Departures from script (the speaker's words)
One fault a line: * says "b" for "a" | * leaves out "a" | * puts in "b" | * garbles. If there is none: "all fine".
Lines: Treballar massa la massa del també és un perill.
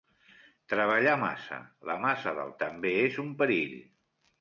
all fine